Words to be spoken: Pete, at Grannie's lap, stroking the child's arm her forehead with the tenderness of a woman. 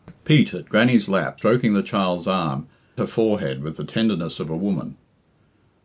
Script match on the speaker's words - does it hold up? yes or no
yes